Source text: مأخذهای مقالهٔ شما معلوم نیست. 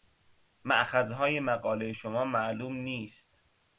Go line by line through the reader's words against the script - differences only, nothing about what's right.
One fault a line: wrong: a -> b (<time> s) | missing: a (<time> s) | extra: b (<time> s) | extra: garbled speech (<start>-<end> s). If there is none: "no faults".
no faults